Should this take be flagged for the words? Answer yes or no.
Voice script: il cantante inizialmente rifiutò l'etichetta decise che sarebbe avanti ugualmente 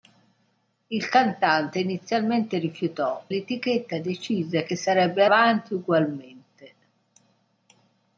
no